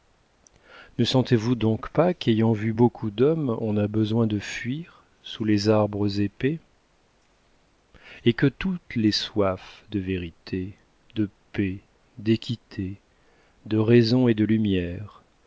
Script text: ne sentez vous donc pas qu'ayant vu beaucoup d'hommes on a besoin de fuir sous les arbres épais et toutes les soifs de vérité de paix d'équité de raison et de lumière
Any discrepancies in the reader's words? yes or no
yes